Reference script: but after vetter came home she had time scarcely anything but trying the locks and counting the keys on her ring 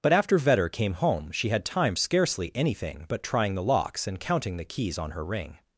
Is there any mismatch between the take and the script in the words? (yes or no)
no